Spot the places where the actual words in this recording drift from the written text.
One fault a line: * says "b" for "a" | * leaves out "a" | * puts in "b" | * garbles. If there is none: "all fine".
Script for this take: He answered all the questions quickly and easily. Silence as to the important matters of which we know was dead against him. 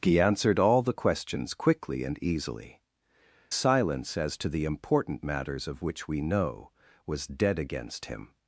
all fine